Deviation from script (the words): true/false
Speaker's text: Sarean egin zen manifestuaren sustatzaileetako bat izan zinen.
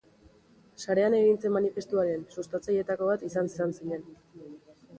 true